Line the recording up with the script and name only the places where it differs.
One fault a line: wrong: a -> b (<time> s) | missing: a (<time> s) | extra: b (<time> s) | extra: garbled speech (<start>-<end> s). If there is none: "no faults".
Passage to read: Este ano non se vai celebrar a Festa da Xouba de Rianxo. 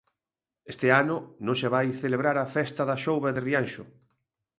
no faults